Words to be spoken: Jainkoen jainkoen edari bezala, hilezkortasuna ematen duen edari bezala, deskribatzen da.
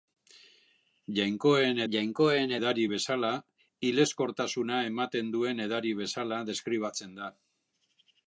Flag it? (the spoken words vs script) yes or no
no